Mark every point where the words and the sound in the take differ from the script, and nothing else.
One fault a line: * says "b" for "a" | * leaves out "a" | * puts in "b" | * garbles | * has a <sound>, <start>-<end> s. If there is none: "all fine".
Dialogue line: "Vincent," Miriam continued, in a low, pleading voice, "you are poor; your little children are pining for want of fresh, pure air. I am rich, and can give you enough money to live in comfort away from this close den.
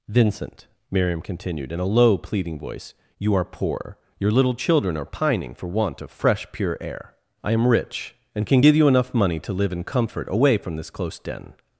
all fine